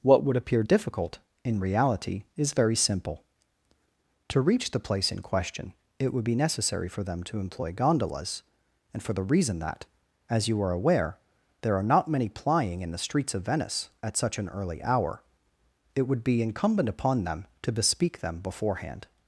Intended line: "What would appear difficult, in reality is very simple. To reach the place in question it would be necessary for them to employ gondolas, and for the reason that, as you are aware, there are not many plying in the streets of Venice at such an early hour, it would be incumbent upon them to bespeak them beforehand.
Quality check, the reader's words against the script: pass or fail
pass